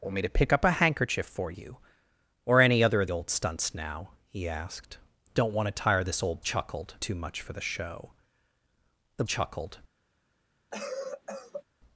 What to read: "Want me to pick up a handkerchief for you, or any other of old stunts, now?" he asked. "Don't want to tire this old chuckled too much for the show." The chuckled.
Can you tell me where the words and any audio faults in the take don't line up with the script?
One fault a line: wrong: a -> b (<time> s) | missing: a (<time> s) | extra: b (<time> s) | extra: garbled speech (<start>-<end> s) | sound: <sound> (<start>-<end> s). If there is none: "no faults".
sound: cough (10.7-11.6 s)